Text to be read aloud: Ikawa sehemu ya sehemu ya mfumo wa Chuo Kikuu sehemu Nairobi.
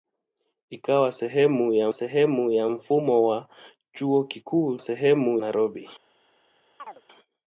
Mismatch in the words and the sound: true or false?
true